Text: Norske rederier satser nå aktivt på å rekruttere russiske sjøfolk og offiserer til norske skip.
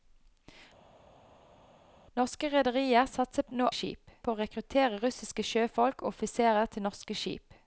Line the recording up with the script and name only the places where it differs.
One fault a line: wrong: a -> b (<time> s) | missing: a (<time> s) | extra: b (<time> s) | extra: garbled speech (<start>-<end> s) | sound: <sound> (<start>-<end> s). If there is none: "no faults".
wrong: aktivt -> skip (3.7 s)